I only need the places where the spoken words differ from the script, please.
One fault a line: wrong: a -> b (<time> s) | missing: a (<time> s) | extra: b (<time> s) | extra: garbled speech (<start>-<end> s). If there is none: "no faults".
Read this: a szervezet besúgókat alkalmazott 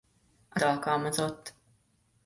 missing: szervezet besúgókat (0.6 s)